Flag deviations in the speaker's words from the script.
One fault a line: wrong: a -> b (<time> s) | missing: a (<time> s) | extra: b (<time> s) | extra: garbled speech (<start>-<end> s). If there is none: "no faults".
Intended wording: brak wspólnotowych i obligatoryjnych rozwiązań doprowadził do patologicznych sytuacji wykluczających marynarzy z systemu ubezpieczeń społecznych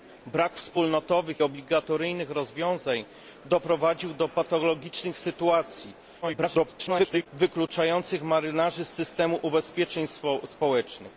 missing: i (1.4 s)
extra: garbled speech (6.2-7.3 s)